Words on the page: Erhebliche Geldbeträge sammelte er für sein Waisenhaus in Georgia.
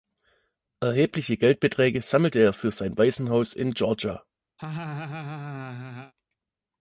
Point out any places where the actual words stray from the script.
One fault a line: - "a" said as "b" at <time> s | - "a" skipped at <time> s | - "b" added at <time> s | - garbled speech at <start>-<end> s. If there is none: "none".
none